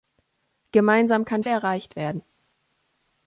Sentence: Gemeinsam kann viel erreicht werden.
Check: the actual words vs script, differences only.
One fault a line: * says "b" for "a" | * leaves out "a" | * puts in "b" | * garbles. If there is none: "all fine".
* leaves out "viel"